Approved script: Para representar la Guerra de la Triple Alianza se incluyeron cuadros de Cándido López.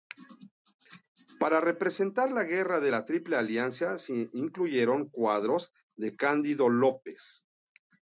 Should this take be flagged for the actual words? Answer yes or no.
no